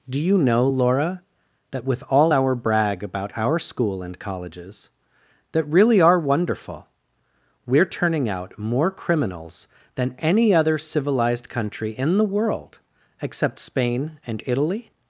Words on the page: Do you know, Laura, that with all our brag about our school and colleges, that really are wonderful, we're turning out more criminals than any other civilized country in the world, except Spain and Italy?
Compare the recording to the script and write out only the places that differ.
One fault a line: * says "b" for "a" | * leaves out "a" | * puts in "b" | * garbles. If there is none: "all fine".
all fine